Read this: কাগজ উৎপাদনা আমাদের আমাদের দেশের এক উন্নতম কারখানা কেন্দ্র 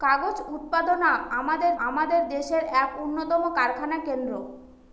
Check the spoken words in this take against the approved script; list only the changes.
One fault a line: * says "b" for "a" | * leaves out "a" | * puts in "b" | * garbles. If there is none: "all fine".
all fine